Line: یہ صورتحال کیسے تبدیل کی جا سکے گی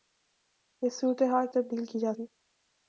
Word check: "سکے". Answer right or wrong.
wrong